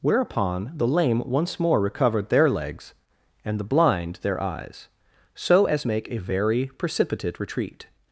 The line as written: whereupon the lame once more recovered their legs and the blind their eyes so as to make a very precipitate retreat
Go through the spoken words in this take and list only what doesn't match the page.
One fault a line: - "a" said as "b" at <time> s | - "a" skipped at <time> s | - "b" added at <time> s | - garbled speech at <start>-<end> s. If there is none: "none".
- "to" skipped at 5.9 s